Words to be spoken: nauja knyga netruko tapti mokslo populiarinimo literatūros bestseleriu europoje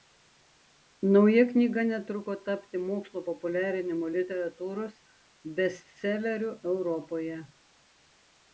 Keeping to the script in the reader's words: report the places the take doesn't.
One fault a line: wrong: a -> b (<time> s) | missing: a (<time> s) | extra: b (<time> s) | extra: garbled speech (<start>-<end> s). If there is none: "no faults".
no faults